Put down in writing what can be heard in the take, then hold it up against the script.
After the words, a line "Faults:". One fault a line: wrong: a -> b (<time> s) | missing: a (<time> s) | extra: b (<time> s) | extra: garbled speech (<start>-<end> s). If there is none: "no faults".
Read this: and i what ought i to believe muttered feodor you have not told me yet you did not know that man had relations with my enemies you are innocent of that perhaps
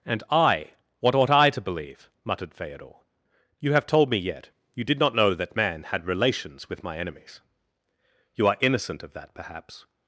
and i what ought i to believe muttered feodor you have told me yet you did not know that man had relations with my enemies you are innocent of that perhaps
Faults:
missing: not (3.9 s)